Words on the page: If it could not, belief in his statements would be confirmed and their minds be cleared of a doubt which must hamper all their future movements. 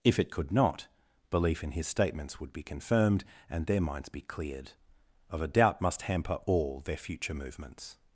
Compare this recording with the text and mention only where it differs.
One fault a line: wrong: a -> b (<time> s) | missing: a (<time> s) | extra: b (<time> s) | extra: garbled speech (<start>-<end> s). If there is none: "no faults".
missing: which (5.8 s)